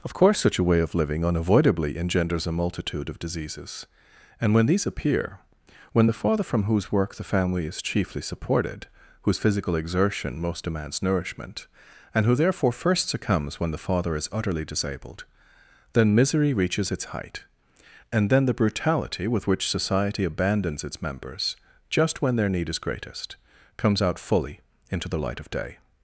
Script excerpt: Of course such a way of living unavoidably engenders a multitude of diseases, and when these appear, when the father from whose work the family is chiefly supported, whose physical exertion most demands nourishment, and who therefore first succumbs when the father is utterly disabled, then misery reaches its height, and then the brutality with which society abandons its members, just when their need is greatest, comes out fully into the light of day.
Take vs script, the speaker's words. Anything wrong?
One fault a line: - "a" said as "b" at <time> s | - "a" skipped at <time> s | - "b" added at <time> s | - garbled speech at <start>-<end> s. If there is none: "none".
none